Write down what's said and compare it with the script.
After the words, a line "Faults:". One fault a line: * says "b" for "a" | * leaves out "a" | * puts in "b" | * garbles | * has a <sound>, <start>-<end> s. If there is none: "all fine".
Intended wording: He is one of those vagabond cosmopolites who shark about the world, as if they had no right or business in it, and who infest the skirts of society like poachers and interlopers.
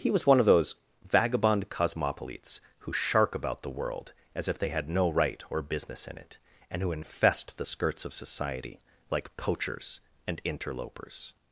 He was one of those vagabond cosmopolites who shark about the world, as if they had no right or business in it, and who infest the skirts of society like poachers and interlopers.
Faults:
* says "was" for "is"